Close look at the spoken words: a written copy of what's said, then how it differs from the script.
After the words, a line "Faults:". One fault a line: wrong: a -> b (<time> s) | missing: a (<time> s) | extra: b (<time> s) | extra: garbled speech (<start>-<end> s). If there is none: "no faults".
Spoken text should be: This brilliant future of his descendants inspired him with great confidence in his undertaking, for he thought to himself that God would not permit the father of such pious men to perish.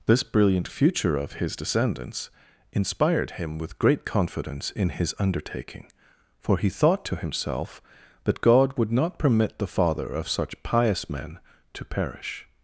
This brilliant future of his descendants inspired him with great confidence in his undertaking, for he thought to himself that God would not permit the father of such pious men to perish.
Faults:
no faults